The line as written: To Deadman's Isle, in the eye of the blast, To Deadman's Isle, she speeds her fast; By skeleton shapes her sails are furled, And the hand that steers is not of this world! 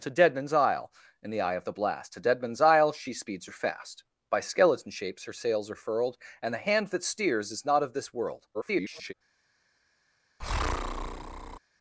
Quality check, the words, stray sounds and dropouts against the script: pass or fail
fail